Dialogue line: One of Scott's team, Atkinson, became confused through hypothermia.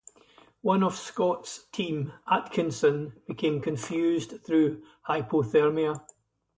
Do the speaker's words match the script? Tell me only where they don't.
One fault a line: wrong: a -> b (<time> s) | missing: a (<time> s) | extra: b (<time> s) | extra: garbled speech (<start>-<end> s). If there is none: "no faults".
no faults